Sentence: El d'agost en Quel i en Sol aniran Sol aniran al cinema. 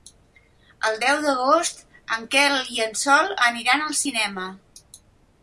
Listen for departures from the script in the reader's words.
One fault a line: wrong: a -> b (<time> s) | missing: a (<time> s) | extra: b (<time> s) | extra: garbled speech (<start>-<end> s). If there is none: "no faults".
extra: deu (1.0 s)
missing: Sol aniran (3.9 s)